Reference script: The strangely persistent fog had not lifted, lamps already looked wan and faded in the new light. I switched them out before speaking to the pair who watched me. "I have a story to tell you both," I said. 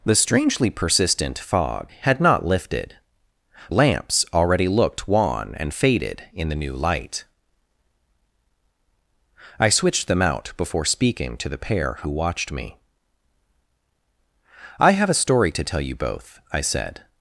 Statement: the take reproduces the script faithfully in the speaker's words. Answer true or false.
true